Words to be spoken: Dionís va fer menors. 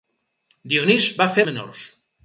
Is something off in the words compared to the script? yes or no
no